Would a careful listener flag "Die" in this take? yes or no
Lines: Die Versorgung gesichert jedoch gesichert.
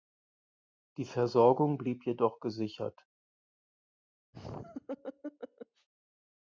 no